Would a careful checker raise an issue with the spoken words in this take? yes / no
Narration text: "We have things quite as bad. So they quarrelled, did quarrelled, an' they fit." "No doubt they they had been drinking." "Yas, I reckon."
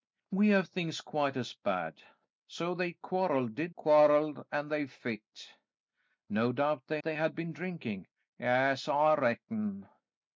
no